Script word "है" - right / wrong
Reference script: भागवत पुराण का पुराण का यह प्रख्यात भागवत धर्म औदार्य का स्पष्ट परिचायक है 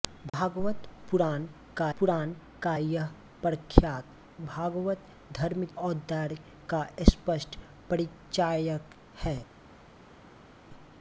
right